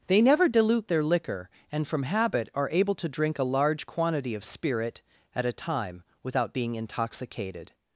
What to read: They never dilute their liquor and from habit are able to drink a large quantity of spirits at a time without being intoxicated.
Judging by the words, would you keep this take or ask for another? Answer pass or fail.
fail